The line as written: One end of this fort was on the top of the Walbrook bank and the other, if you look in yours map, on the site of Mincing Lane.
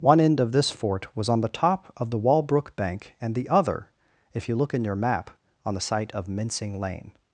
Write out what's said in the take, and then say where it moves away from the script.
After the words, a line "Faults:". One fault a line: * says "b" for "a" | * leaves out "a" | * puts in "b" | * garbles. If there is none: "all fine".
One end of this fort was on the top of the Walbrook bank and the other, if you look in your map, on the site of Mincing Lane.
Faults:
* says "your" for "yours"